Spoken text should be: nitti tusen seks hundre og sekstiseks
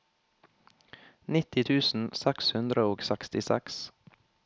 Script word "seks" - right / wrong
right